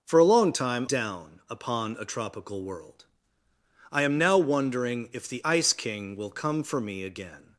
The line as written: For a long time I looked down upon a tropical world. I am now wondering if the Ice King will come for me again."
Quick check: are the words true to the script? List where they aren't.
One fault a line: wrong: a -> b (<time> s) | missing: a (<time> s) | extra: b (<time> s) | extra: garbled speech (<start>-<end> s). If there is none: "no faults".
missing: I looked (0.9 s)